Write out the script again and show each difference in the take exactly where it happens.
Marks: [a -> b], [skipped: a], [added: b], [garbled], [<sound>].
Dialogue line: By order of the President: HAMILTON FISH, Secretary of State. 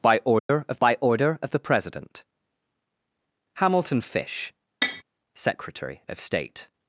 By order [dropout] of [added: by order of] the President: HAMILTON FISH, [tap] Secretary of State.